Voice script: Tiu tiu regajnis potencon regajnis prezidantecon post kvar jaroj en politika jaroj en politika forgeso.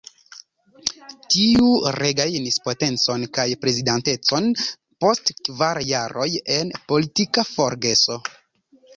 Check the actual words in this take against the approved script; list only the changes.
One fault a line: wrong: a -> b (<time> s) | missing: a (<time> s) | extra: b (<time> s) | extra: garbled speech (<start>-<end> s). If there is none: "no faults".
missing: tiu (1.6 s)
wrong: regajnis -> kaj (3.4 s)
missing: jaroj en politika (7.4 s)